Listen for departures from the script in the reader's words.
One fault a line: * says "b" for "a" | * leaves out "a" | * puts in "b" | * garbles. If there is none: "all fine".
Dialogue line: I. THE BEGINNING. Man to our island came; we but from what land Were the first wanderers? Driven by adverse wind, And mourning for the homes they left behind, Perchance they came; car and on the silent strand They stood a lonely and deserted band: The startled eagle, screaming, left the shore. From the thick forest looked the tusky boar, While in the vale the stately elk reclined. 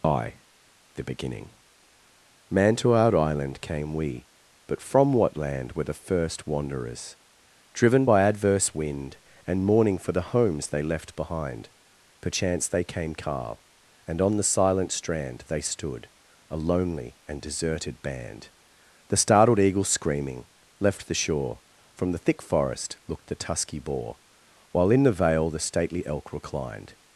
all fine